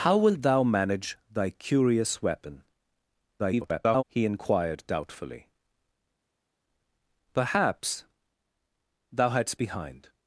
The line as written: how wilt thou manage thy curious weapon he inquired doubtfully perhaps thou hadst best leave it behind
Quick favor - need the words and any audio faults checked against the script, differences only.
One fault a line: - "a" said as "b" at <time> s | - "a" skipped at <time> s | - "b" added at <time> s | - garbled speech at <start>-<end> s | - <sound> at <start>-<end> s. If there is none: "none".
- garbled speech at 3.4-4.0 s
- "best leave it" skipped at 9.6 s